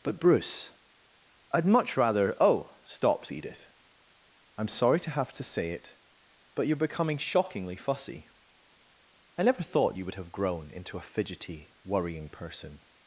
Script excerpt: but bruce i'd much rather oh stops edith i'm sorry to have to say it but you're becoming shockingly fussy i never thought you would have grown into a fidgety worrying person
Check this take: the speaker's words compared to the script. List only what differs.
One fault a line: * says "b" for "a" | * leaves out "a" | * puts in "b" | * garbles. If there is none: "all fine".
all fine